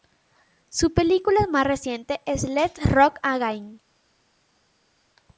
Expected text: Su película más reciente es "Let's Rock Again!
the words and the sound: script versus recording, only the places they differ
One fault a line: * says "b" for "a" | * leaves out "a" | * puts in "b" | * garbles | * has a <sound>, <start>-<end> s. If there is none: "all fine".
all fine